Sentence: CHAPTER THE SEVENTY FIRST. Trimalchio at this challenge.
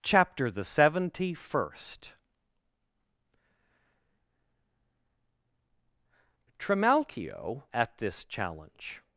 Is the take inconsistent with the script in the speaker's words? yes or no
no